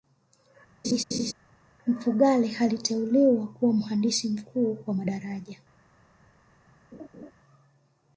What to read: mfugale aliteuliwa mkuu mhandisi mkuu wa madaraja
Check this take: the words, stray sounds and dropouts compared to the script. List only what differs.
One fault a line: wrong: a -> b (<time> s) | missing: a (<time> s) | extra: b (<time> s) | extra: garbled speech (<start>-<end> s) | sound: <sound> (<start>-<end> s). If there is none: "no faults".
sound: laugh (0.8-1.3 s)
wrong: mkuu -> kuwa (3.5 s)
sound: laugh (6.9-7.3 s)